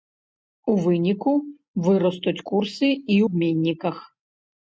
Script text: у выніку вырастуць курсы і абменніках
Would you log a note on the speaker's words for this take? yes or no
no